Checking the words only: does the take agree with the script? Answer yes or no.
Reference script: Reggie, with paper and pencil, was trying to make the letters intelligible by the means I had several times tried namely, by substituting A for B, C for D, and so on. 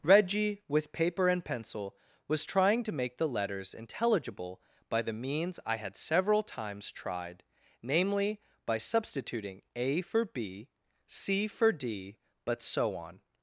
no